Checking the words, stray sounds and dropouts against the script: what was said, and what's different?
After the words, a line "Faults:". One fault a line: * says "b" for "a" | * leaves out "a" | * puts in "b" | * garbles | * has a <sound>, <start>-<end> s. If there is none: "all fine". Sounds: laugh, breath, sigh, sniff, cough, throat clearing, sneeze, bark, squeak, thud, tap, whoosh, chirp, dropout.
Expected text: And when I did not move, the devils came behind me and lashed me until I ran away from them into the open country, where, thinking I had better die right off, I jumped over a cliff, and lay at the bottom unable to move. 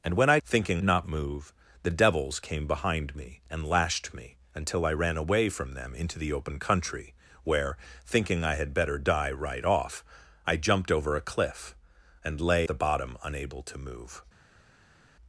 And when I thinking not move, the devils came behind me and lashed me until I ran away from them into the open country, where, thinking I had better die right off, I jumped over a cliff, and lay the bottom unable to move.
Faults:
* says "thinking" for "did"
* leaves out "at"